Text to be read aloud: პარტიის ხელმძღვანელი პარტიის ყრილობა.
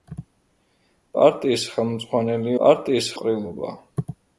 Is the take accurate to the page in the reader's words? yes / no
yes